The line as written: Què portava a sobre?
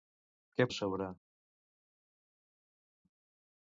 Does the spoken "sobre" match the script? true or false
true